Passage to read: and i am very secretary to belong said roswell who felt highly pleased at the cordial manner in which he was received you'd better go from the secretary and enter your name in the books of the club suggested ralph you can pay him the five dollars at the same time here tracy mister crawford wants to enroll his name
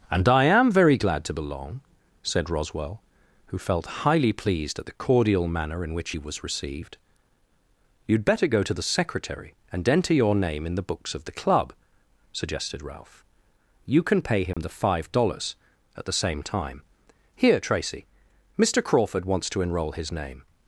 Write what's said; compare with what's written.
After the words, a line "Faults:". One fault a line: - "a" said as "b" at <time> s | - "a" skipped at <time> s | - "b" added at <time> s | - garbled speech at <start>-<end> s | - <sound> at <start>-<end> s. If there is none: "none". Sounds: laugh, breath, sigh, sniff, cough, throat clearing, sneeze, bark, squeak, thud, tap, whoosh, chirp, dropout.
and i am very glad to belong said roswell who felt highly pleased at the cordial manner in which he was received you'd better go to the secretary and enter your name in the books of the club suggested ralph you can pay him the five dollars at the same time here tracy mister crawford wants to enroll his name
Faults:
- "secretary" said as "glad" at 1.0 s
- "from" said as "to" at 8.6 s
- dropout at 14.5-14.6 s